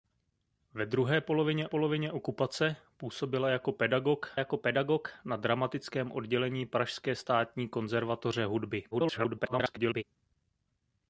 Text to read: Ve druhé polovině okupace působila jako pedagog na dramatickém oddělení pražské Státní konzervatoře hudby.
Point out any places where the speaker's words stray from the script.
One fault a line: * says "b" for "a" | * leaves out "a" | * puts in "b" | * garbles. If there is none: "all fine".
* puts in "polovině"
* puts in "jako pedagog"
* garbles